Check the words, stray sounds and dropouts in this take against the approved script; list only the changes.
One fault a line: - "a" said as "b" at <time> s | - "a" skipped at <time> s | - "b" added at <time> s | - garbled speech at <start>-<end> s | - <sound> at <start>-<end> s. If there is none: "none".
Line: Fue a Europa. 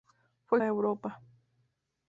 none